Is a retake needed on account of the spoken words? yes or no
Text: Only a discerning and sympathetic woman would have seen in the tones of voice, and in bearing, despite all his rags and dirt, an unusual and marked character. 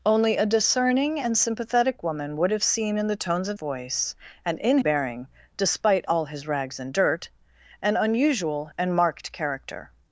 no